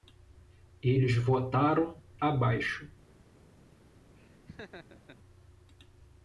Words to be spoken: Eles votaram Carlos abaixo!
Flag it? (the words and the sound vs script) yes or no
yes